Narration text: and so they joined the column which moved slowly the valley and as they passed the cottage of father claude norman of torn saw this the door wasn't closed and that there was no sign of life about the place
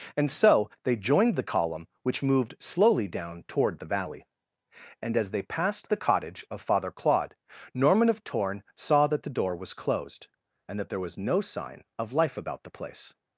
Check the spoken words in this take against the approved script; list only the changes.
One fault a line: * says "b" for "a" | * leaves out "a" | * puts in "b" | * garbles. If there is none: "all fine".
* puts in "down toward"
* says "that" for "this"
* says "was" for "wasn't"